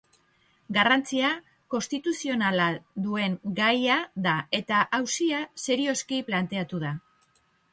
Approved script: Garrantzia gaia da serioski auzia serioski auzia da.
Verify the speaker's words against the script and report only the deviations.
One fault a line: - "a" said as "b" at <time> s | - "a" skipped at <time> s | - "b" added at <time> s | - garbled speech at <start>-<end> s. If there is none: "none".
- "konstituzionala duen" added at 1.7 s
- "serioski" said as "eta" at 4.6 s
- "auzia" said as "planteatu" at 6.3 s